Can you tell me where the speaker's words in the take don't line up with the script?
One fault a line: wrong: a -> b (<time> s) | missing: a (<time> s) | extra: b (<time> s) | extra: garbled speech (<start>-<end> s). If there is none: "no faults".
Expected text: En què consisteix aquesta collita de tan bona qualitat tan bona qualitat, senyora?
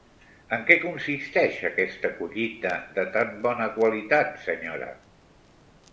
missing: tan bona qualitat (4.4 s)